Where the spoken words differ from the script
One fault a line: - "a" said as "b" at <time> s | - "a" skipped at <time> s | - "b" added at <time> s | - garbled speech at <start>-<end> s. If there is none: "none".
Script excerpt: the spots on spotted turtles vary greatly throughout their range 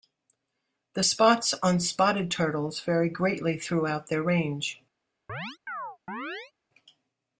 none